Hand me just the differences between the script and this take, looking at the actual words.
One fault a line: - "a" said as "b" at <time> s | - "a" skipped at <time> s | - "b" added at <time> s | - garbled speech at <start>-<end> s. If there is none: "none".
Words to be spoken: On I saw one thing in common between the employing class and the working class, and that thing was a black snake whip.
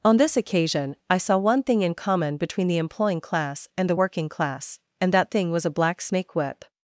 - "this occasion" added at 0.2 s